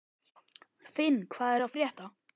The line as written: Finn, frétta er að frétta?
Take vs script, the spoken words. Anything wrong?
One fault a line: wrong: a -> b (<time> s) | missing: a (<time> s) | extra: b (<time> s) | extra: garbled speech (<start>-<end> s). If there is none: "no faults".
wrong: frétta -> hvað (1.4 s)